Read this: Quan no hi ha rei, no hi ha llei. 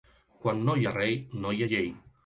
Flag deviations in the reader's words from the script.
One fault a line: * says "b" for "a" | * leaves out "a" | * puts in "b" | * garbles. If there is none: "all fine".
all fine